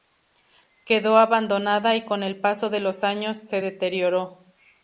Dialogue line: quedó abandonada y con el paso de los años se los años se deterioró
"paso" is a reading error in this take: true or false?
false